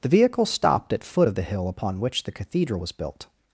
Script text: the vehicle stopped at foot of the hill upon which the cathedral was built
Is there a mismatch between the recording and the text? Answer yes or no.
no